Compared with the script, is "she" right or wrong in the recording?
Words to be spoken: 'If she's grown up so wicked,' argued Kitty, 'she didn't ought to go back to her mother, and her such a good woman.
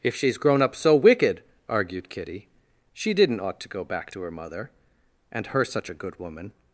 right